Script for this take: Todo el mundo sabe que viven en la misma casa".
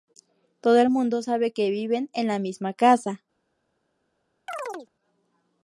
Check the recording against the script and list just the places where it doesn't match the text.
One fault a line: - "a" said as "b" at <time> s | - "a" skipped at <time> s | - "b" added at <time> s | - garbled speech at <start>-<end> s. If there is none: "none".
none